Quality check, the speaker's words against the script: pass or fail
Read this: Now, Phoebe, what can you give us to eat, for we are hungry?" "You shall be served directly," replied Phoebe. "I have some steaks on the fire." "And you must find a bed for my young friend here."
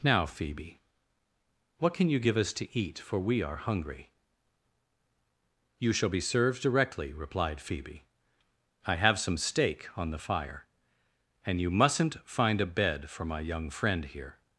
fail